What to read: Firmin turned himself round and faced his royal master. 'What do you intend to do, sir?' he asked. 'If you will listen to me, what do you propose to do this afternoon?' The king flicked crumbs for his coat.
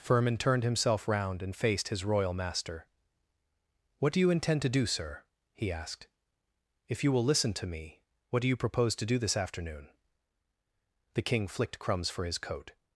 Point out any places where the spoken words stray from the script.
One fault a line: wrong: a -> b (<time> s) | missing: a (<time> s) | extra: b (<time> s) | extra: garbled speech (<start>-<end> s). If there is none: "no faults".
no faults